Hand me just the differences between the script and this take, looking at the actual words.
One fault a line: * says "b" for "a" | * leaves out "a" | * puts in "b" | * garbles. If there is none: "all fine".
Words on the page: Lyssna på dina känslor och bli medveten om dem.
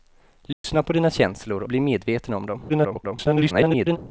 * leaves out "och"
* garbles